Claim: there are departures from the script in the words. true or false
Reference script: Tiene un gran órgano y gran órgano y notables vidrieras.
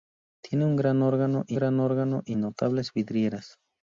false